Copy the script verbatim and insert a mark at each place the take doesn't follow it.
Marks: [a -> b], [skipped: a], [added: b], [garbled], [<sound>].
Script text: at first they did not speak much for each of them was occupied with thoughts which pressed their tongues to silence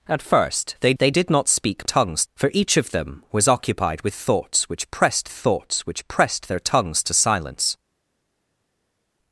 at first they [added: they] did not speak [much -> tongues] for each of them was occupied with thoughts which pressed [added: thoughts which pressed] their tongues to silence